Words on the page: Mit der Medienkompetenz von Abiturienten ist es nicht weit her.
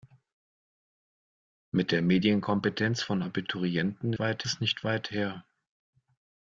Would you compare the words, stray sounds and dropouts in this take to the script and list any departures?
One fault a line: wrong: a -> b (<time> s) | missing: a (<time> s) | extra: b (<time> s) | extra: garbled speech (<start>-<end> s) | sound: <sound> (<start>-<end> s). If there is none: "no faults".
wrong: ist -> weit (4.2 s)